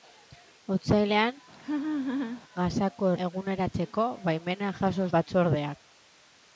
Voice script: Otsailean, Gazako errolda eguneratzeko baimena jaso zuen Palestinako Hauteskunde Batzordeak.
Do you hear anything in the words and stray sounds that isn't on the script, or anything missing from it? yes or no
yes